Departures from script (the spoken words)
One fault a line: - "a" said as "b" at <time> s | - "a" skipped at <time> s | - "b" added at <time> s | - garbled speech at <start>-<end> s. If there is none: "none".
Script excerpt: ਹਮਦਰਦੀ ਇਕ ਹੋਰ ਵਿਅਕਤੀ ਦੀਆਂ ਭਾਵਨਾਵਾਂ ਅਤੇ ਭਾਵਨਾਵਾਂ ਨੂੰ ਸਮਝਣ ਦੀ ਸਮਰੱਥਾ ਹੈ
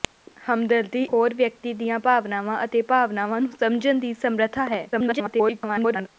- "ਇਕ" skipped at 1.0 s
- garbled speech at 4.9-6.1 s